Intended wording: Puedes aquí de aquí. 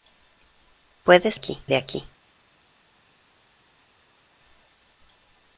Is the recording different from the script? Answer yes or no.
no